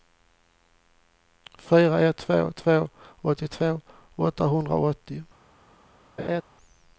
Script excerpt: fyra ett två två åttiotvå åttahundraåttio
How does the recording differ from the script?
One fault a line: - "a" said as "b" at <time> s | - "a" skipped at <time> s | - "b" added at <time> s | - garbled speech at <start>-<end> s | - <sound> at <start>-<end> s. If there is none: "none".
- laugh at 6.2-6.4 s